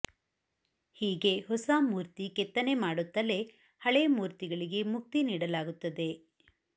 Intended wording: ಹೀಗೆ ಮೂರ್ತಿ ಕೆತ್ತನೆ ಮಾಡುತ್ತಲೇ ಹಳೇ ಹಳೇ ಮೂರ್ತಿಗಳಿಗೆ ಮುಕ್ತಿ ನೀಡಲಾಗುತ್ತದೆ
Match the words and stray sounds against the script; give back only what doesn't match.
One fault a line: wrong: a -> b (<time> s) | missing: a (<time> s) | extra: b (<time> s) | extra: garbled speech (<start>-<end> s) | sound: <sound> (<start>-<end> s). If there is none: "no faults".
extra: ಹೊಸ (1.4 s)
missing: ಹಳೇ (4.1 s)